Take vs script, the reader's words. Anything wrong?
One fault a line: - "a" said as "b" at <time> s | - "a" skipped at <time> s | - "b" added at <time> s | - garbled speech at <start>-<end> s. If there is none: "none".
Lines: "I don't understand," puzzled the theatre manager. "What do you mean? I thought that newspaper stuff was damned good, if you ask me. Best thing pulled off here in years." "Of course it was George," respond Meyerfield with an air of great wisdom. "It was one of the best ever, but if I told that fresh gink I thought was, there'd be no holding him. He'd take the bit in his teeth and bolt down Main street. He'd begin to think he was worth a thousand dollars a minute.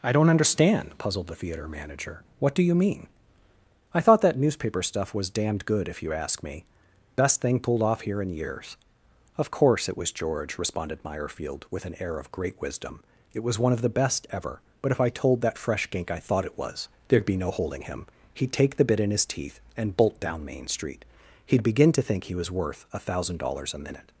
- "respond" said as "responded" at 10.6 s
- "it" added at 16.4 s